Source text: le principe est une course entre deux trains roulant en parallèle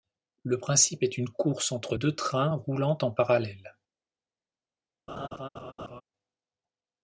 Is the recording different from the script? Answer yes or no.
no